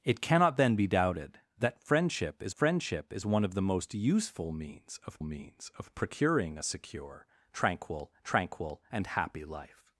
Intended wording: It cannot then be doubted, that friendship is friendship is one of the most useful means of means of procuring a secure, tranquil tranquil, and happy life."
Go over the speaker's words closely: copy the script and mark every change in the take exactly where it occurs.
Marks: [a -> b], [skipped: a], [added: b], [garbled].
It cannot then be doubted, that friendship is friendship is one of the most useful means of means of procuring a secure, tranquil tranquil, and happy life."